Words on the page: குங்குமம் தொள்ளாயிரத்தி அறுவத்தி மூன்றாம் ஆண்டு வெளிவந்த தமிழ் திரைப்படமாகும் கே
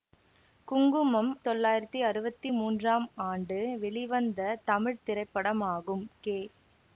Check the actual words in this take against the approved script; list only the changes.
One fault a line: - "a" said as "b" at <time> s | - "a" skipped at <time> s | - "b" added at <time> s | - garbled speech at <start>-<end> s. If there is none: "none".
none